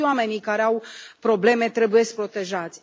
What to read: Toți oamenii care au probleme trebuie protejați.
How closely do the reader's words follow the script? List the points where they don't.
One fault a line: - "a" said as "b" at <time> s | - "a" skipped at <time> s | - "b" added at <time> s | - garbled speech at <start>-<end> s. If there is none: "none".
none